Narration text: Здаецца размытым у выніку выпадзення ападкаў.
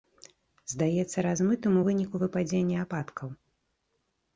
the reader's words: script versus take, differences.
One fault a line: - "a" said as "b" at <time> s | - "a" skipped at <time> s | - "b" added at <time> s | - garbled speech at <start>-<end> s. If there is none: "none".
none